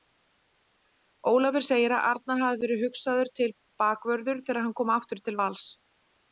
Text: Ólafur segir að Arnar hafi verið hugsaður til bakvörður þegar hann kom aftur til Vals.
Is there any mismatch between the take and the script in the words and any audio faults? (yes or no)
no